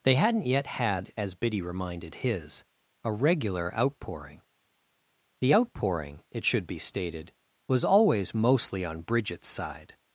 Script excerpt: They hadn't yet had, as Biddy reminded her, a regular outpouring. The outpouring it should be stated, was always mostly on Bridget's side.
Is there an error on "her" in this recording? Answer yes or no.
yes